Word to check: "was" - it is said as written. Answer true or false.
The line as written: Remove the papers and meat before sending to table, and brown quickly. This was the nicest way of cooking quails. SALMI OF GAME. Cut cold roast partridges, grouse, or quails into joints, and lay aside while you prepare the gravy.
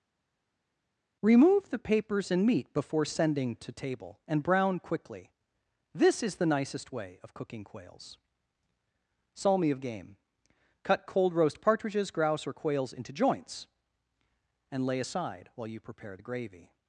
false